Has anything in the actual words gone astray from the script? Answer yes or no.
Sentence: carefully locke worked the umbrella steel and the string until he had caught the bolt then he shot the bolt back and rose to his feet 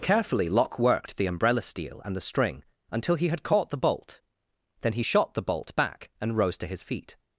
no